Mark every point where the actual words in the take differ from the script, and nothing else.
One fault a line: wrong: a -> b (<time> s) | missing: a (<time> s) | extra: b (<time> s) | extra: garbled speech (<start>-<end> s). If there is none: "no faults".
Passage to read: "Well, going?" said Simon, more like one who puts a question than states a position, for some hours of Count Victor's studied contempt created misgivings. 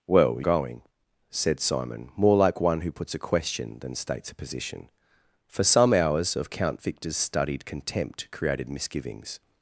no faults